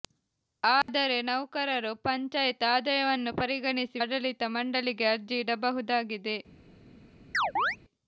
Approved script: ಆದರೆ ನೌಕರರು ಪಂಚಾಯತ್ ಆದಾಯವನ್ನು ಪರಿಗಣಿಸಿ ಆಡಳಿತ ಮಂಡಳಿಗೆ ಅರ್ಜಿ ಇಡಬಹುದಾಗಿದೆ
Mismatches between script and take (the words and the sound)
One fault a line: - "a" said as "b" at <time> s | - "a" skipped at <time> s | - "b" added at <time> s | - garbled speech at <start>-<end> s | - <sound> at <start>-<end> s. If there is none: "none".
- dropout at 0.8-0.9 s
- chirp at 7.3-7.8 s